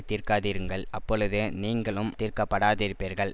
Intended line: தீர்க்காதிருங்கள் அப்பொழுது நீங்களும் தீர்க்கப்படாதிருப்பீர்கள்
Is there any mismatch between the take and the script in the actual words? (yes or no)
no